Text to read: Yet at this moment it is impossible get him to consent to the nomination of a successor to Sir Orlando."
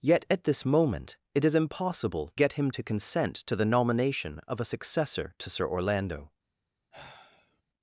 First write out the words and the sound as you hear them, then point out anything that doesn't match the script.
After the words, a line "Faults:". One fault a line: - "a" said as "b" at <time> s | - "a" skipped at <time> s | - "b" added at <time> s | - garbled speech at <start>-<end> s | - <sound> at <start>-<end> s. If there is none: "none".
Yet at this moment it is impossible get him to consent to the nomination of a successor to Sir Orlando."
Faults:
- sigh at 6.9-7.6 s